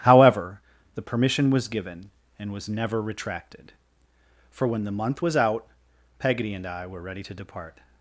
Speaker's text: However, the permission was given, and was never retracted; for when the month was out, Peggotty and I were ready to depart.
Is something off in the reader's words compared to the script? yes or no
no